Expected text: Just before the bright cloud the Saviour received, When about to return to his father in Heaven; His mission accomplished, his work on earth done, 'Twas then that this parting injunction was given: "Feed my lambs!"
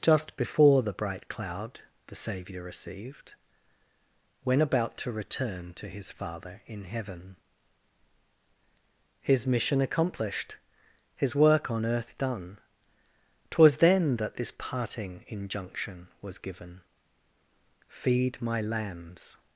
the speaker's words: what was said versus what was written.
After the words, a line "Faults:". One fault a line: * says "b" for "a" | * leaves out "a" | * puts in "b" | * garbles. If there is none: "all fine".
Just before the bright cloud the Saviour received, When about to return to his father in Heaven; His mission accomplished, his work on earth done, 'Twas then that this parting injunction was given: "Feed my lambs!"
Faults:
all fine